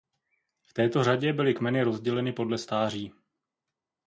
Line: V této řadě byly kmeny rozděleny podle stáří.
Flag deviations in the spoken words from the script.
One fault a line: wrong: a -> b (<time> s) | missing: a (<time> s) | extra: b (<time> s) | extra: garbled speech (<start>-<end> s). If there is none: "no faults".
no faults